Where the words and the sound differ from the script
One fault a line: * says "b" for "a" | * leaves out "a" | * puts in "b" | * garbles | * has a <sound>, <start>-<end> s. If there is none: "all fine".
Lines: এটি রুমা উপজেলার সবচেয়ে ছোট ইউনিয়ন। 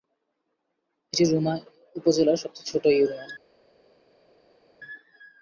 all fine